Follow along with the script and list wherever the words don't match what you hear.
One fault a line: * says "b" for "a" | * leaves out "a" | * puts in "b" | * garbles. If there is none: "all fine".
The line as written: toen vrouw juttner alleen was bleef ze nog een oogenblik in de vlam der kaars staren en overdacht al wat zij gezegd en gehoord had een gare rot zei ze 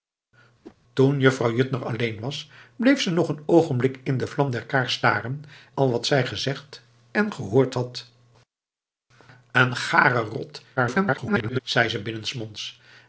* leaves out "en overdacht"
* garbles